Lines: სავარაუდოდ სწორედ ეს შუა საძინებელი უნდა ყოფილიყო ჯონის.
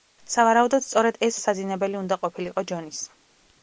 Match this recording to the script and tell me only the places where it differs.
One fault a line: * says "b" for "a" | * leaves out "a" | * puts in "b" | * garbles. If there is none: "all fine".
* leaves out "შუა"